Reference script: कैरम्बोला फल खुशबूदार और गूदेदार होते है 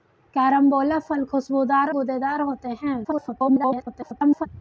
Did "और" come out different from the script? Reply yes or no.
yes